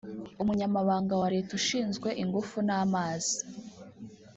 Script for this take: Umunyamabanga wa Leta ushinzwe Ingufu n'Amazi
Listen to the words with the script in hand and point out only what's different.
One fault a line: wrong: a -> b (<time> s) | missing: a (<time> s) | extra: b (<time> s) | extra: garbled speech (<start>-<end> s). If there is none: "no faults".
no faults